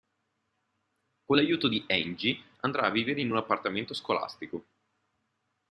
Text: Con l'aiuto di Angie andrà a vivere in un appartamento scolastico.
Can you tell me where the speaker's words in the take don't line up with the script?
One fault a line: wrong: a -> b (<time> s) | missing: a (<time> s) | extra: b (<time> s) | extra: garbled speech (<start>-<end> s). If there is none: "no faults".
no faults